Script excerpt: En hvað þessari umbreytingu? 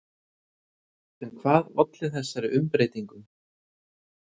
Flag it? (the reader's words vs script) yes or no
yes